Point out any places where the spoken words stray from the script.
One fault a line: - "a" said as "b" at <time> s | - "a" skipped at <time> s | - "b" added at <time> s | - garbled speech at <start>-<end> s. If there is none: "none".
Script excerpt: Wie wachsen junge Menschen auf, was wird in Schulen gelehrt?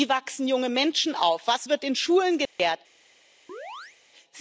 none